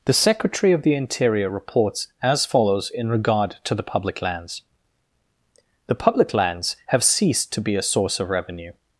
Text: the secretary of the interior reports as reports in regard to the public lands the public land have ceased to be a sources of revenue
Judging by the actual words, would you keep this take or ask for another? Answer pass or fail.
fail